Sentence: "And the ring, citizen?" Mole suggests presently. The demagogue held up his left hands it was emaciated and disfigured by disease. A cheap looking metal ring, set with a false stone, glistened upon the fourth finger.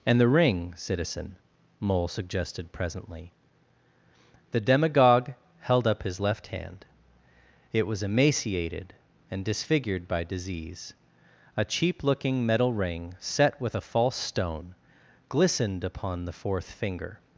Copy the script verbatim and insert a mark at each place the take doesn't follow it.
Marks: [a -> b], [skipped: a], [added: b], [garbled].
"And the ring, citizen?" Mole [suggests -> suggested] presently. The demagogue held up his left [hands -> hand] it was emaciated and disfigured by disease. A cheap looking metal ring, set with a false stone, glistened upon the fourth finger.